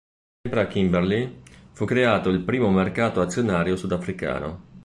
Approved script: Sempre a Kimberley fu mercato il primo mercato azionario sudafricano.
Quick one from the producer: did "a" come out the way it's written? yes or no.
yes